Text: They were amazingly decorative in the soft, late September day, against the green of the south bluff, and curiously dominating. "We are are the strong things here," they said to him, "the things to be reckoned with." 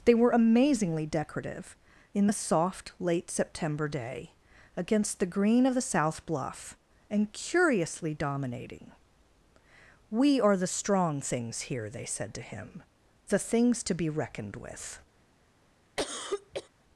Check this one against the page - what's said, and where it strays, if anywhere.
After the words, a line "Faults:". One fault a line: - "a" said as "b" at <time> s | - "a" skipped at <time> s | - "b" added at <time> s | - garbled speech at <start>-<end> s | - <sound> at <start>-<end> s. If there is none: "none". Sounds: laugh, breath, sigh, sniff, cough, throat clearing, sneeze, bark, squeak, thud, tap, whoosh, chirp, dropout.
They were amazingly decorative in the soft, late September day, against the green of the south bluff, and curiously dominating. "We are the strong things here," they said to him, "the things to be reckoned with."
Faults:
- "are" skipped at 10.6 s
- cough at 16.0-16.7 s